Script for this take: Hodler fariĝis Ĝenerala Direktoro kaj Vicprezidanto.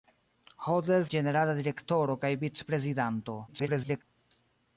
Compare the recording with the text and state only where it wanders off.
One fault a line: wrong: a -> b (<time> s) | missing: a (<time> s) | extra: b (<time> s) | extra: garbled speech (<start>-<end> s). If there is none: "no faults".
missing: fariĝis (1.0 s)
extra: garbled speech (3.5-4.0 s)